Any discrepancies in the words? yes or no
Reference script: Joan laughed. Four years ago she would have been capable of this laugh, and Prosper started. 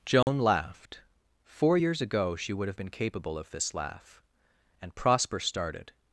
no